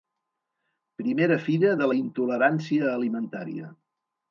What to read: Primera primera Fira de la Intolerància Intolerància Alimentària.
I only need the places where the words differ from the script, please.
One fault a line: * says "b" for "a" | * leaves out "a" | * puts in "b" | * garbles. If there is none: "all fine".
* leaves out "primera"
* leaves out "Intolerància"